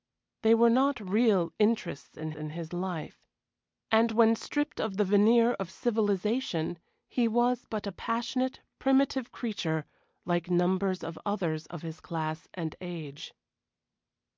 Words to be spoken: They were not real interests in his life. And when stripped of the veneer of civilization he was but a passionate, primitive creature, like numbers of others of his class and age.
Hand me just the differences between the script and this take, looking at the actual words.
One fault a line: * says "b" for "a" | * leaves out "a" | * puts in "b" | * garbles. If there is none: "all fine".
* puts in "in"